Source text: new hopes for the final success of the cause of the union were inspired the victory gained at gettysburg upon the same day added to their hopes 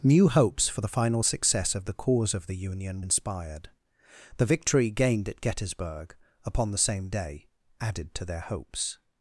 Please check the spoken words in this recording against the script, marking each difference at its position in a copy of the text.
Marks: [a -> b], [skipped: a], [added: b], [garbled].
new hopes for the final success of the cause of the union [skipped: were] inspired the victory gained at gettysburg upon the same day added to their hopes